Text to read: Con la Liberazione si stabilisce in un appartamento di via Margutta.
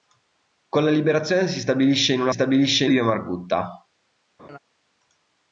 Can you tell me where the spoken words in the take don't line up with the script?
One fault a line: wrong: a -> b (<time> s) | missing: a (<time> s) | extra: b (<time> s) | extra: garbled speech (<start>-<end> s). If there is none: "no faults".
wrong: appartamento -> stabilisce (2.3 s)